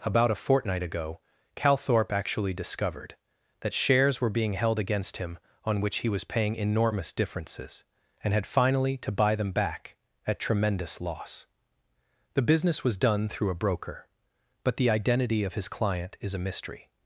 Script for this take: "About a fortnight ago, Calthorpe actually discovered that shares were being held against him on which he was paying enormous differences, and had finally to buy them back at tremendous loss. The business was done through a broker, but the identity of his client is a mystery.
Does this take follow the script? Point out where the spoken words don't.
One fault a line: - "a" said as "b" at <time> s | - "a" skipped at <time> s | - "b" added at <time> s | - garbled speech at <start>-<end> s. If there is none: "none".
none